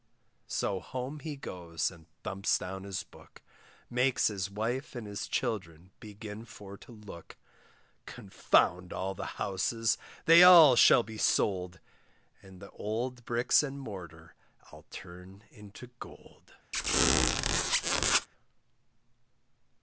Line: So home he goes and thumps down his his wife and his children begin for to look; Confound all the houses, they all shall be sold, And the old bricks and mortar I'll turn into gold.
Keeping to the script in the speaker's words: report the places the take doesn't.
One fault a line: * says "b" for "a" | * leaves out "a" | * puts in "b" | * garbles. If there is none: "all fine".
* puts in "book Makes"